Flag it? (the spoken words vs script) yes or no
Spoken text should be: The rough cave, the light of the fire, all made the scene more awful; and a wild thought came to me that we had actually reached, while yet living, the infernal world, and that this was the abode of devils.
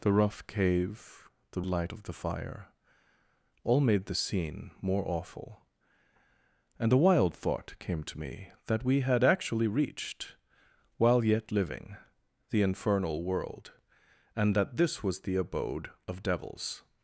no